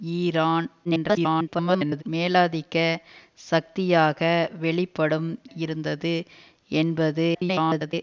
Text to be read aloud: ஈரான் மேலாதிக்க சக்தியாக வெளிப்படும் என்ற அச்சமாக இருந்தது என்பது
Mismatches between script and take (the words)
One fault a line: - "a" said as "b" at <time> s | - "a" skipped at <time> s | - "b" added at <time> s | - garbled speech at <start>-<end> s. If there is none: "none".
- garbled speech at 0.8-2.0 s
- "என்ற அச்சமாக" skipped at 5.3 s
- garbled speech at 7.3-7.9 s